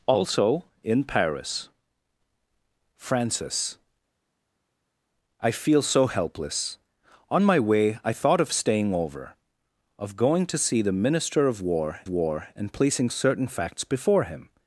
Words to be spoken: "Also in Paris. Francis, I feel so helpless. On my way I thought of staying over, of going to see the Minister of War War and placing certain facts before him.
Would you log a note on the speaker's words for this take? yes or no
no